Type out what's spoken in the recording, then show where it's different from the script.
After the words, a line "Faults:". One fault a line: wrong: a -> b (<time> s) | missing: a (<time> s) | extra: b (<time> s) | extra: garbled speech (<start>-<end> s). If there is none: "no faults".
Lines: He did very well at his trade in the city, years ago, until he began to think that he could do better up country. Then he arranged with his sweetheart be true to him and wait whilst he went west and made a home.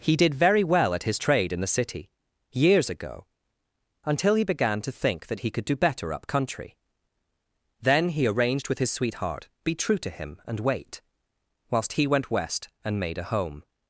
He did very well at his trade in the city, years ago, until he began to think that he could do better up country. Then he arranged with his sweetheart be true to him and wait whilst he went west and made a home.
Faults:
no faults